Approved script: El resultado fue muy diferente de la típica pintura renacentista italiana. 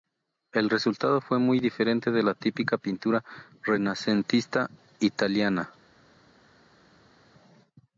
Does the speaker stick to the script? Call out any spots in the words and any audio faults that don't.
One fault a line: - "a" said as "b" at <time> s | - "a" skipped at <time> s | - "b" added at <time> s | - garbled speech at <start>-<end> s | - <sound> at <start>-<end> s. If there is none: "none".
none